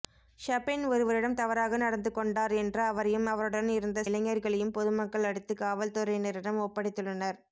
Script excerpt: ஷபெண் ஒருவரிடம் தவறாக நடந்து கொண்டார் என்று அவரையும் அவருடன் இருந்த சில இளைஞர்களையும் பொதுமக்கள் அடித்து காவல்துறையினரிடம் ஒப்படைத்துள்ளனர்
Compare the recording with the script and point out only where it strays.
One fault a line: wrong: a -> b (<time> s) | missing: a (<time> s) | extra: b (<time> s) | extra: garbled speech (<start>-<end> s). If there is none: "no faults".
missing: சில (4.0 s)